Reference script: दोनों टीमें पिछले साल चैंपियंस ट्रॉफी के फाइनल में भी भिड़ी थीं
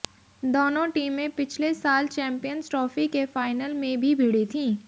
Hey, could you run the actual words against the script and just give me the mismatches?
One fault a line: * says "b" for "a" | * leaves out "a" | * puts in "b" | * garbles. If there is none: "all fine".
all fine